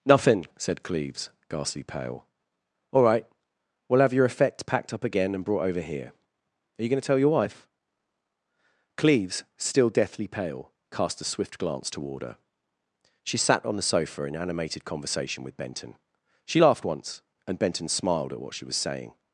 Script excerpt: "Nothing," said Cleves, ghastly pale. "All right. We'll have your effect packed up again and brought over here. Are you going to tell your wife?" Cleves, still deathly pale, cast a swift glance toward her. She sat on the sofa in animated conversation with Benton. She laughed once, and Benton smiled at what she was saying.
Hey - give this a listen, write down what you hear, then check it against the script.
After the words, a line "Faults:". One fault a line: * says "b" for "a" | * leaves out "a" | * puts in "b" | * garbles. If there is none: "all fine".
"Nothing," said Cleves, ghastly pale. "All right. We'll have your effect packed up again and brought over here. Are you going to tell your wife?" Cleves, still deathly pale, cast a swift glance toward her. She sat on the sofa in animated conversation with Benton. She laughed once, and Benton smiled at what she was saying.
Faults:
all fine